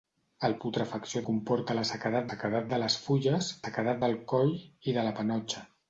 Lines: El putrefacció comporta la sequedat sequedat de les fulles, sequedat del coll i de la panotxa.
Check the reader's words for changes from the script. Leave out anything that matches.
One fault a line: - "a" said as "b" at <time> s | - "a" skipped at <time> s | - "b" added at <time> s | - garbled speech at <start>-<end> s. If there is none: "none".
none